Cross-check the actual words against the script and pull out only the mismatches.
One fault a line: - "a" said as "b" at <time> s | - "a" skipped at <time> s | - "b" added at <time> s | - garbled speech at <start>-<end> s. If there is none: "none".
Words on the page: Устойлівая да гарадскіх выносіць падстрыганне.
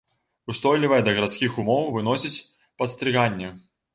- "умоў" added at 1.6 s